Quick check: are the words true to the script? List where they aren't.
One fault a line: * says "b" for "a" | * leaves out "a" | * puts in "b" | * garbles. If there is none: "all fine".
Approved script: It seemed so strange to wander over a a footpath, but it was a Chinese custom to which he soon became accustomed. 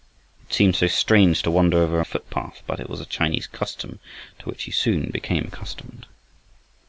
all fine